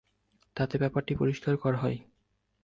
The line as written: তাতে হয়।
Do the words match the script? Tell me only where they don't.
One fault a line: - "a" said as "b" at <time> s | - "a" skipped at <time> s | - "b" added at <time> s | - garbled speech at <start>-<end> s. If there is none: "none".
- "ব্যাপারটি পরিষ্কার করা" added at 0.7 s